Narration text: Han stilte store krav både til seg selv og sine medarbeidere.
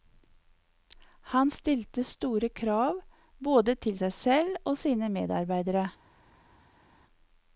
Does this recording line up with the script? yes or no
yes